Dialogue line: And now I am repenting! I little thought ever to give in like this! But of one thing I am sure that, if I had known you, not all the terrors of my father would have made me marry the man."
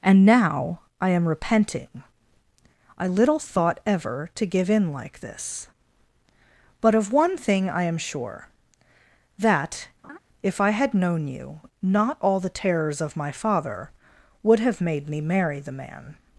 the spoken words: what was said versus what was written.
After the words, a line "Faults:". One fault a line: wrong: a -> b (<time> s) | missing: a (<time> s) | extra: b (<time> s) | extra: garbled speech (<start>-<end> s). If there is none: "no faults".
And now I am repenting! I little thought ever to give in like this! But of one thing I am sure that, if I had known you, not all the terrors of my father would have made me marry the man."
Faults:
no faults